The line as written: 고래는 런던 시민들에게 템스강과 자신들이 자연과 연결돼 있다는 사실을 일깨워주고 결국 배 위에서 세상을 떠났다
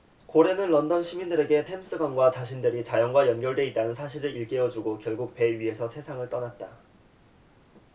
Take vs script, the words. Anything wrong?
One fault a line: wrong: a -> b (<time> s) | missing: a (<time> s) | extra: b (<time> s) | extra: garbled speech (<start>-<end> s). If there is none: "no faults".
no faults